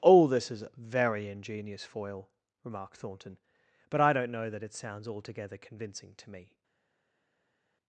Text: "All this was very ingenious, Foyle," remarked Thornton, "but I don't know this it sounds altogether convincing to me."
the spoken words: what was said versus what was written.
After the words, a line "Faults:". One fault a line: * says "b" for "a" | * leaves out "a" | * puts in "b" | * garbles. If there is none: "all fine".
"All this is very ingenious, Foyle," remarked Thornton, "but I don't know that it sounds altogether convincing to me."
Faults:
* says "is" for "was"
* says "that" for "this"